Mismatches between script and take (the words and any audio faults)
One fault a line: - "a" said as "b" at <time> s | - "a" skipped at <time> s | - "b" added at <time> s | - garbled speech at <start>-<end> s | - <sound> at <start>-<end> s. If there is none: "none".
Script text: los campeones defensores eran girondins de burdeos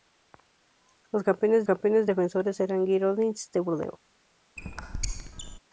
- "campeones" added at 1.6 s
- squeak at 4.6-5.6 s